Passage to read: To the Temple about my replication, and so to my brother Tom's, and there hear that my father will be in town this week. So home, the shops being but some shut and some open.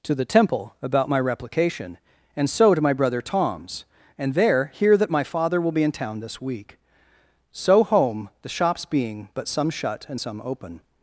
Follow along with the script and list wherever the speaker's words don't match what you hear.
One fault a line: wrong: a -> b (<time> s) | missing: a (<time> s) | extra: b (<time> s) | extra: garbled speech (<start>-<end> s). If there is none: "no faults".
no faults